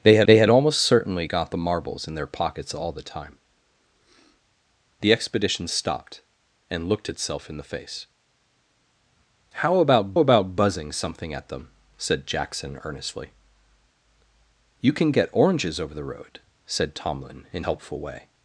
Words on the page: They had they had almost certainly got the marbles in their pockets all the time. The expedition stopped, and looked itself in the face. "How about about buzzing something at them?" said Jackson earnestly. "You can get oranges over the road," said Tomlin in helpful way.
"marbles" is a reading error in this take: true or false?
false